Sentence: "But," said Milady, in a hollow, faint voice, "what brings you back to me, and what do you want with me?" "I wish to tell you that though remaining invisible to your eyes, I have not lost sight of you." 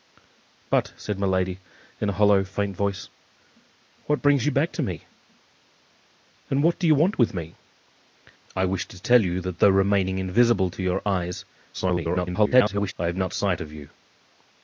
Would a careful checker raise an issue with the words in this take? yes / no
yes